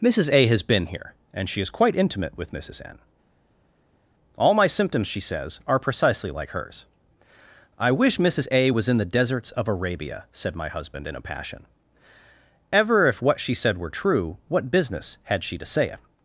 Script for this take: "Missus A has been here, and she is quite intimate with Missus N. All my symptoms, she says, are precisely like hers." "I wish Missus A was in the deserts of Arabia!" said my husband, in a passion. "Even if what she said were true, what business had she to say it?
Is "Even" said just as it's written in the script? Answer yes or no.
no